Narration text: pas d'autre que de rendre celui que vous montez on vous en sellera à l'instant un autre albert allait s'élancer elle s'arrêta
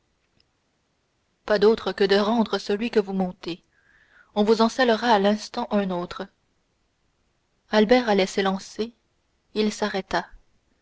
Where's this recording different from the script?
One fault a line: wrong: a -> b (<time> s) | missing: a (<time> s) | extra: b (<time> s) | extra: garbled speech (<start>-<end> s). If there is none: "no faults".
wrong: elle -> il (9.5 s)